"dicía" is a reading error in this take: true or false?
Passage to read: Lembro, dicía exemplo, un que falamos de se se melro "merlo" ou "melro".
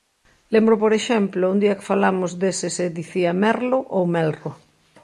true